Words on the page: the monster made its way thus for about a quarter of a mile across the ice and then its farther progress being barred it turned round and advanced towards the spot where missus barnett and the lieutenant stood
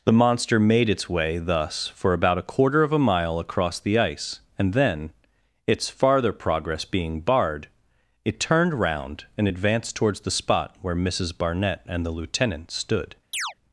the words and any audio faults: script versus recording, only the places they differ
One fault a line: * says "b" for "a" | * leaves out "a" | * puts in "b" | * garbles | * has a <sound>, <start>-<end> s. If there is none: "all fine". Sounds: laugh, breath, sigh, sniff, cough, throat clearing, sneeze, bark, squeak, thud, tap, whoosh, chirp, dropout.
* has a chirp, 13.3-13.5 s